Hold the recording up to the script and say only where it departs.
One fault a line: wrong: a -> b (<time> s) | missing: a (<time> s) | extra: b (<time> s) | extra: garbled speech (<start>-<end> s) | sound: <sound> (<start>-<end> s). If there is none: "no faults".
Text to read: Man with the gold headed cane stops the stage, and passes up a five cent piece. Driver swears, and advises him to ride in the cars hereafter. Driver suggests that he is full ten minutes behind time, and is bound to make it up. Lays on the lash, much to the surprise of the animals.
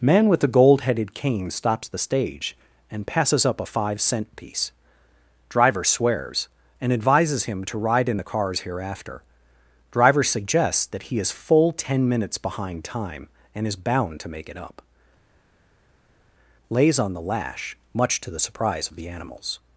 no faults